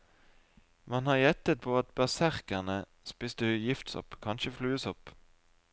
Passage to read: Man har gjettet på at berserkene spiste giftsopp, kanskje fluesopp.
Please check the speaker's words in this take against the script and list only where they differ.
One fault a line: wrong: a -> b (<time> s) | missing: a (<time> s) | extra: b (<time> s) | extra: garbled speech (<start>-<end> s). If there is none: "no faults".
no faults